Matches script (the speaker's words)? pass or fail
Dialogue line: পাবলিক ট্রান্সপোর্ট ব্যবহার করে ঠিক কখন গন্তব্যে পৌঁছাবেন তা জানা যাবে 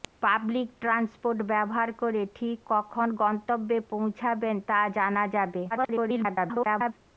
fail